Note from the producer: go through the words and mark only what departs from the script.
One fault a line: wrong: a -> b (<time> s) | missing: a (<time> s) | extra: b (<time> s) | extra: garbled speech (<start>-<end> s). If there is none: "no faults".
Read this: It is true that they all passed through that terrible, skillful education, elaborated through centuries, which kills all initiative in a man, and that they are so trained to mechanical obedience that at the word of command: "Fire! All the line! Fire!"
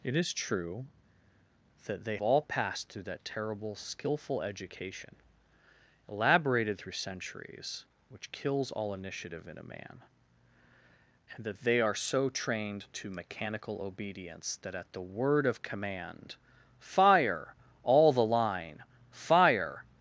no faults